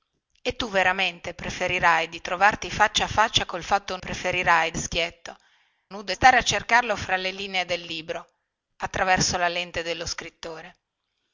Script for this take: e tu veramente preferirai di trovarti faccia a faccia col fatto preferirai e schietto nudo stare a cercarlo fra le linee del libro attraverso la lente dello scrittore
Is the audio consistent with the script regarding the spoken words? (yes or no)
yes